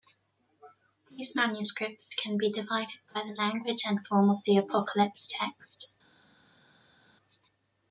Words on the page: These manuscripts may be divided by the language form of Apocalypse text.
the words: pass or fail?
fail